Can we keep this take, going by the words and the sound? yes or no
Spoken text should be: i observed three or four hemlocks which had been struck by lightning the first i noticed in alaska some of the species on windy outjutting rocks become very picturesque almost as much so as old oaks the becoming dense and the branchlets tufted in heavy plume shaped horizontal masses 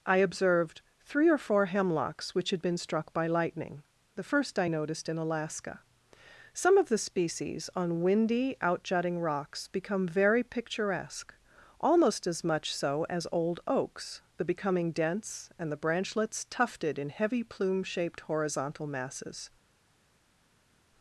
yes